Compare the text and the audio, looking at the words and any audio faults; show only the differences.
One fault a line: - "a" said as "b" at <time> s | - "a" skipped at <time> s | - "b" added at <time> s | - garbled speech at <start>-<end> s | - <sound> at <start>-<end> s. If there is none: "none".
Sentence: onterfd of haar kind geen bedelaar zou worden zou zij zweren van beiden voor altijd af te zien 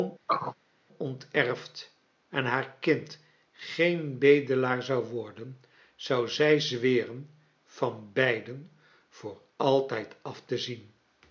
- throat clearing at 0.3-0.6 s
- "of" said as "en" at 2.3 s